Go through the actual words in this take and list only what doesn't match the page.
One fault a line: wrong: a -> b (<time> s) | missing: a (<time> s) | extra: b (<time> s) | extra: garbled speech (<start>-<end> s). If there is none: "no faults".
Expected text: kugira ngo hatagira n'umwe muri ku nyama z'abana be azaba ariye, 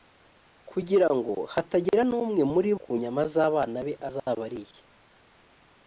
no faults